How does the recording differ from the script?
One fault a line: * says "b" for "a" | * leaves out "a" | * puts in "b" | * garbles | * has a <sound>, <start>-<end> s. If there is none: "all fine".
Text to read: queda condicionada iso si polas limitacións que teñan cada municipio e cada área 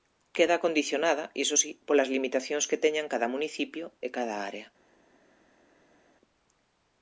all fine